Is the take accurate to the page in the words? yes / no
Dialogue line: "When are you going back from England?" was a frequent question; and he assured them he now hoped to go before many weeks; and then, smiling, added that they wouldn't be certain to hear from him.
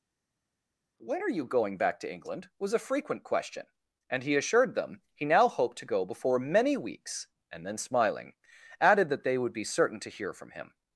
no